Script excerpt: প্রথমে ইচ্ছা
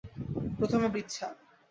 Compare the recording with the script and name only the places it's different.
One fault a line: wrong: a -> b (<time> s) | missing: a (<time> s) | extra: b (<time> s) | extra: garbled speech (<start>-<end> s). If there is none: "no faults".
no faults